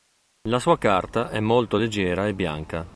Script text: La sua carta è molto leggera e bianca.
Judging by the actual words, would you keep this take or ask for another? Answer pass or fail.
pass